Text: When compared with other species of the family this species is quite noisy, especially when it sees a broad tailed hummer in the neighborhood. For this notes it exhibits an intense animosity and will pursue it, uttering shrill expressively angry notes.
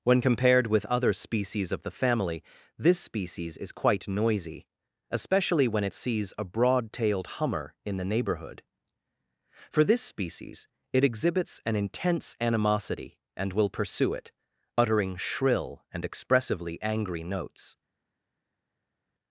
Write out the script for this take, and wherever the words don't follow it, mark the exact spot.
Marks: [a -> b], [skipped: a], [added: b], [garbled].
When compared with other species of the family this species is quite noisy, especially when it sees a broad tailed hummer in the neighborhood. For this [notes -> species] it exhibits an intense animosity and will pursue it, uttering shrill [added: and] expressively angry notes.